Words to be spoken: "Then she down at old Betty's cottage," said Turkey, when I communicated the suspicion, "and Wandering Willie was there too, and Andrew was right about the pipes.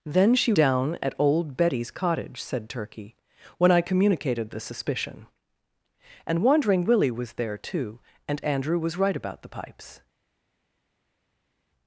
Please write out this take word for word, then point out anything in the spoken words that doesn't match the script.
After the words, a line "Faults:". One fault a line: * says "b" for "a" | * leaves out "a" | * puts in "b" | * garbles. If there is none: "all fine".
"Then she down at old Betty's cottage," said Turkey, when I communicated the suspicion, "and Wandering Willie was there too, and Andrew was right about the pipes.
Faults:
all fine